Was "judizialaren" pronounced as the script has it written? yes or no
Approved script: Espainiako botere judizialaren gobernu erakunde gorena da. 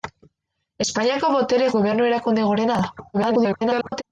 no